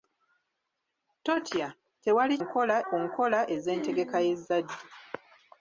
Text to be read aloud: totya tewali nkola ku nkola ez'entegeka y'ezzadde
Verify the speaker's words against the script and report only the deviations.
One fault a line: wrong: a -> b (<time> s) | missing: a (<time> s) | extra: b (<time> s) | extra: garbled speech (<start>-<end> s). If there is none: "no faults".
no faults